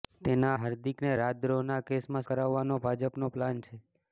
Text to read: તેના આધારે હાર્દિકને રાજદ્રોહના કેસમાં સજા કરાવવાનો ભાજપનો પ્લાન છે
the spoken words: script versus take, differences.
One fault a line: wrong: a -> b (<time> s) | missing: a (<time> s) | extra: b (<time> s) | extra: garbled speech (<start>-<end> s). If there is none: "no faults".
missing: આધારે (0.5 s)
missing: સજા (2.3 s)